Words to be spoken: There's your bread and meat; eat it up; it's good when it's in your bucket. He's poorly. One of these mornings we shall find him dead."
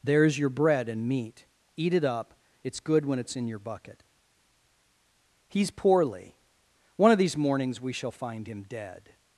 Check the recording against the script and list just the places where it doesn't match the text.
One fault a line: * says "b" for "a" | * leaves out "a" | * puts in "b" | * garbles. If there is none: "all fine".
all fine